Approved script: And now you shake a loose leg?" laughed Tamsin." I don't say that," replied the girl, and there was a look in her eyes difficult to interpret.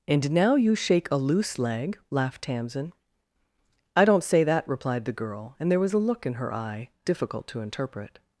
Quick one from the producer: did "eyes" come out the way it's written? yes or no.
no